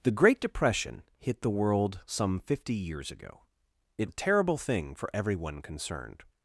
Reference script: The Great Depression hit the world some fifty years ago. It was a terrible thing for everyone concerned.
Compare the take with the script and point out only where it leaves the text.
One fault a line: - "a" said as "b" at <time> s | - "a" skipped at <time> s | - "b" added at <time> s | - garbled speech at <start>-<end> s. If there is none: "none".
- "was" skipped at 4.1 s